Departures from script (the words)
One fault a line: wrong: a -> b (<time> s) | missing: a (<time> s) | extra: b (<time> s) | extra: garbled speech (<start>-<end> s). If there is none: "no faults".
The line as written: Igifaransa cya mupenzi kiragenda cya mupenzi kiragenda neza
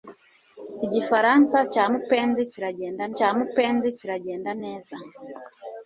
no faults